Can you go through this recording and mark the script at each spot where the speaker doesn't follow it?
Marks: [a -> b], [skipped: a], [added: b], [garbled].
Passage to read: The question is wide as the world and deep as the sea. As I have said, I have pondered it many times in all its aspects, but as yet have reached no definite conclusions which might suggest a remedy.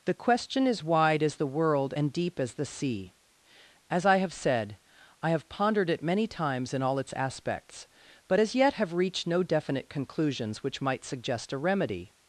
The question is wide as the world and deep as the sea. As I have said, I have pondered it many times in all its aspects, but as yet have reached no definite conclusions which might suggest a remedy.